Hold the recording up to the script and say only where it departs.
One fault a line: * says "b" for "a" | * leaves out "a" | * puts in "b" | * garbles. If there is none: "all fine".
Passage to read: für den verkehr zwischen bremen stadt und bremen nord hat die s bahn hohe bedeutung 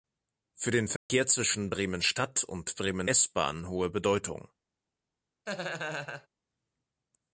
* leaves out "nord hat die"